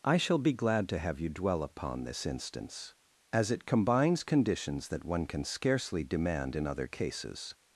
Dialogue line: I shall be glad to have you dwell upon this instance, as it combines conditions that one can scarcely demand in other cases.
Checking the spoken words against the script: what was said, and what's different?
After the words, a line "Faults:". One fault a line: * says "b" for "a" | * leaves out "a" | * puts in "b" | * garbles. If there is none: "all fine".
I shall be glad to have you dwell upon this instance, as it combines conditions that one can scarcely demand in other cases.
Faults:
all fine